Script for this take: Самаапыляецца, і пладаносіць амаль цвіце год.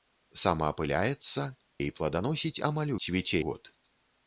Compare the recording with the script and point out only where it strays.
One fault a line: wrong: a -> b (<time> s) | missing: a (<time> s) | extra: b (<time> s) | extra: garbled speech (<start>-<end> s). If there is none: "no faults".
no faults